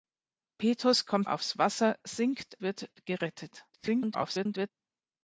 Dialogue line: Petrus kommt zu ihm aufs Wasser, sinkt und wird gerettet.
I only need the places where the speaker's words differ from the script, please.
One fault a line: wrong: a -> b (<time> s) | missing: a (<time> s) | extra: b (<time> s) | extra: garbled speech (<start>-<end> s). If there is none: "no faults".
missing: zu ihm (1.3 s)
missing: und (2.6 s)
extra: garbled speech (3.7-4.7 s)